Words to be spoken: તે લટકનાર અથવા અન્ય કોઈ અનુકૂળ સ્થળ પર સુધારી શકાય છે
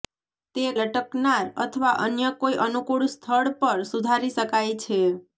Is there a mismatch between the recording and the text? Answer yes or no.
no